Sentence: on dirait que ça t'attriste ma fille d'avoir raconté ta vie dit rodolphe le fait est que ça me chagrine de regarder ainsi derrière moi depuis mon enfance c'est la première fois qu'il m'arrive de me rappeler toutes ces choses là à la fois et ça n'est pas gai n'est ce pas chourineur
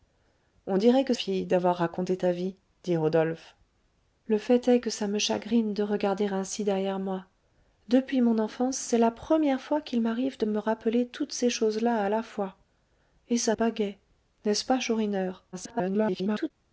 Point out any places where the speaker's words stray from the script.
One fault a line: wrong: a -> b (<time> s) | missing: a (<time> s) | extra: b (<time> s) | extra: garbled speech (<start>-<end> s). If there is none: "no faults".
missing: ça t'attriste ma (1.1 s)
missing: n'est (13.5 s)
extra: garbled speech (15.5-16.5 s)